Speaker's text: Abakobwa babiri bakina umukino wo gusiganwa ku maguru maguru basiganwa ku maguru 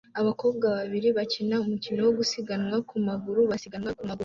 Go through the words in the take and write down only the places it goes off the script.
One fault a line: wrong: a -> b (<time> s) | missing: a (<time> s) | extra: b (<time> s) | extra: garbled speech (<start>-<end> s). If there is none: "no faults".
missing: maguru (3.4 s)